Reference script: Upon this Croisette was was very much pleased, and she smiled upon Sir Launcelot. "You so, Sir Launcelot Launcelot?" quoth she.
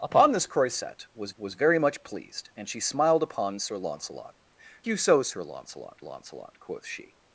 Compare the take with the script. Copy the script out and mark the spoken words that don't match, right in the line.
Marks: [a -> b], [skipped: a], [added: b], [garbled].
Upon this Croisette was was very much pleased, and she smiled upon Sir Launcelot. "You so, Sir Launcelot Launcelot?" quoth she.